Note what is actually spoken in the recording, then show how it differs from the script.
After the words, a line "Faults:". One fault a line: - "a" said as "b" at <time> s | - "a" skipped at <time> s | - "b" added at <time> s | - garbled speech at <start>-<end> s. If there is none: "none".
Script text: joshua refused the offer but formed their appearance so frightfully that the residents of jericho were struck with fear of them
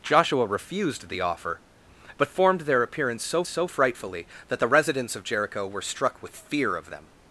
joshua refused the offer but formed their appearance so so frightfully that the residents of jericho were struck with fear of them
Faults:
- "so" added at 3.5 s